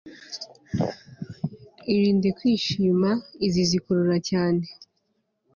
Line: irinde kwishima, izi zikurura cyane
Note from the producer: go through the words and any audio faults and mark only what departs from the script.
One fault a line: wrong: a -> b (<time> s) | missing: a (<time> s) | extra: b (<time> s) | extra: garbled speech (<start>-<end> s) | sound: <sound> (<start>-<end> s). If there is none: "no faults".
no faults